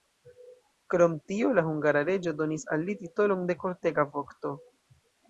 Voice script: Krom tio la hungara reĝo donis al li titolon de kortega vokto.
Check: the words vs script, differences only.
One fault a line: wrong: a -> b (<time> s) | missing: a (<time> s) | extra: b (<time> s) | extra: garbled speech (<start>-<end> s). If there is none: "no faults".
no faults